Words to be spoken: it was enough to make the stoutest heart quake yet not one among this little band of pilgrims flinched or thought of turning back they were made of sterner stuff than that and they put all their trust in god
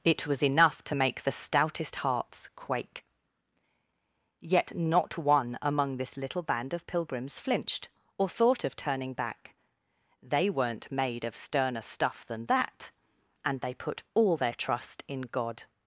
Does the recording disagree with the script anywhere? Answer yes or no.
yes